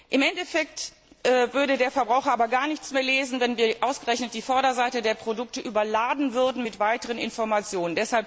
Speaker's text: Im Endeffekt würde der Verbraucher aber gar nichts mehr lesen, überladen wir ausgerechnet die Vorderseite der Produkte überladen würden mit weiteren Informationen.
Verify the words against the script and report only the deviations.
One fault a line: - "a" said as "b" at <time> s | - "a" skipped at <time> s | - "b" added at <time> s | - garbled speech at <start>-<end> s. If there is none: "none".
- "überladen" said as "wenn" at 3.4 s